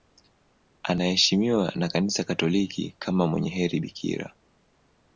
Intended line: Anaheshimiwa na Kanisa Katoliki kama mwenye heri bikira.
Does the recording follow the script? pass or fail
pass